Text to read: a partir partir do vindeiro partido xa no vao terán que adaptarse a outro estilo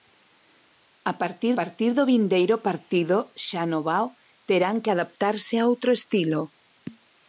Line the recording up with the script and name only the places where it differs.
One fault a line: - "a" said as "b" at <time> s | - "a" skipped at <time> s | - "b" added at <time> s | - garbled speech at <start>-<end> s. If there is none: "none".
none